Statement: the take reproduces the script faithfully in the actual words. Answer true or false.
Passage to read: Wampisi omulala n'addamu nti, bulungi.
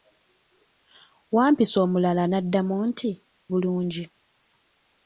true